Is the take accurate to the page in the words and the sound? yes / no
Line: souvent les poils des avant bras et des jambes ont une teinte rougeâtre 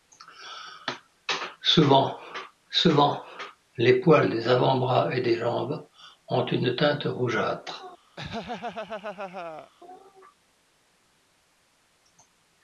no